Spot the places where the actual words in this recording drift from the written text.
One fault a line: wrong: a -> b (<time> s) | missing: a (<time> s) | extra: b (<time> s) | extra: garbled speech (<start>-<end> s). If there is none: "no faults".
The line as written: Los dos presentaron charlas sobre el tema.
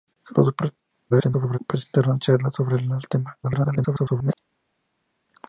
extra: garbled speech (1.1-1.6 s)
extra: garbled speech (3.4-4.3 s)